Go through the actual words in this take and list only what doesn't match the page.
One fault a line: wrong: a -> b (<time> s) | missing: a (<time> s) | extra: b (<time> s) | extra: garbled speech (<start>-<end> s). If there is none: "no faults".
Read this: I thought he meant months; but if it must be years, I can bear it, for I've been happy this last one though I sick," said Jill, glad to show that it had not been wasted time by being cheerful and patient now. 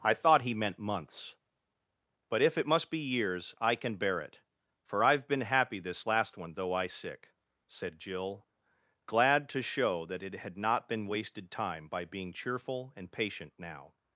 no faults